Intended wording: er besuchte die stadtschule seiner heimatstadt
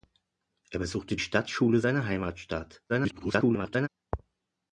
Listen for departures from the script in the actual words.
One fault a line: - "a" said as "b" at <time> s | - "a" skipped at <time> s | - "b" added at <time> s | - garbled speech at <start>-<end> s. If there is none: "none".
- "die" skipped at 1.1 s
- garbled speech at 2.9-3.9 s